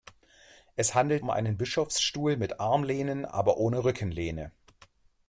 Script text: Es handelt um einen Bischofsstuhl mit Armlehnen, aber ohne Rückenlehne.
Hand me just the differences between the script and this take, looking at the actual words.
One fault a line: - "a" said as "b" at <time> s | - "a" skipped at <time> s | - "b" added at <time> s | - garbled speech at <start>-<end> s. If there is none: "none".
none